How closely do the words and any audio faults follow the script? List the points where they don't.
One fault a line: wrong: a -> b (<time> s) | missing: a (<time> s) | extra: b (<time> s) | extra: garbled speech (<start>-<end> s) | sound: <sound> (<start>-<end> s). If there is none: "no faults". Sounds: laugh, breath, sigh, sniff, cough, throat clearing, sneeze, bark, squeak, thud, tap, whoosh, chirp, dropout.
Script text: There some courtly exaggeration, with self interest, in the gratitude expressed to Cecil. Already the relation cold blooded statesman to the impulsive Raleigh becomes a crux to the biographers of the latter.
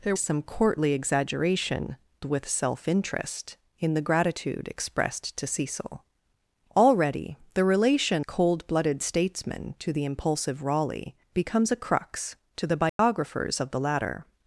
sound: dropout (12.9-13.0 s)